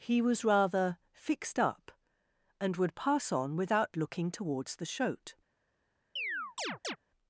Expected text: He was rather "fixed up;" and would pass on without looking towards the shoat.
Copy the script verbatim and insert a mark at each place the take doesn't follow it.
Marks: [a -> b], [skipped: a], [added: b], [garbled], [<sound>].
He was rather "fixed up;" and would pass on without looking towards the shoat. [chirp]